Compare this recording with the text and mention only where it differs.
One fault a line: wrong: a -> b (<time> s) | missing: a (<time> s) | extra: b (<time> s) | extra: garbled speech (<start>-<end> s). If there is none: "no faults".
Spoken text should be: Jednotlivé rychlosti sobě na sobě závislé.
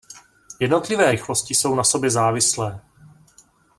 wrong: sobě -> jsou (1.5 s)